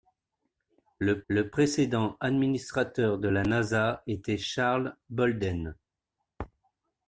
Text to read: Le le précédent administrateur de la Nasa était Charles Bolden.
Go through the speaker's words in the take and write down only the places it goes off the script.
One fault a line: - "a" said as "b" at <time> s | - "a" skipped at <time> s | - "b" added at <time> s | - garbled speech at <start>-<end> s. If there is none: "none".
none